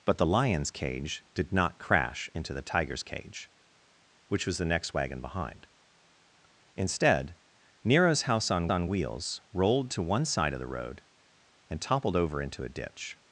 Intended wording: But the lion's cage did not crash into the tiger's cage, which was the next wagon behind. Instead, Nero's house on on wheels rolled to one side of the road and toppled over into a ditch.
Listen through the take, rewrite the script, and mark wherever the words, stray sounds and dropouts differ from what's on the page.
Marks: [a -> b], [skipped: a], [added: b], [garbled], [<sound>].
But the lion's cage did not crash into the tiger's cage, which was the next wagon behind. Instead, Nero's house on on wheels rolled to one side of the road and toppled over into a ditch.